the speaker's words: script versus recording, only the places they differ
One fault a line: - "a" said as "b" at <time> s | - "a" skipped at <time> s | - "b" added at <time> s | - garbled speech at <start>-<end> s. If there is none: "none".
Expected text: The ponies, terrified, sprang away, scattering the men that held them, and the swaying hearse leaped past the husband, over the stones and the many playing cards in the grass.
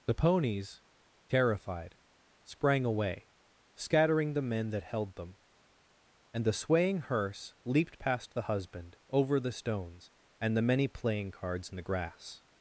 none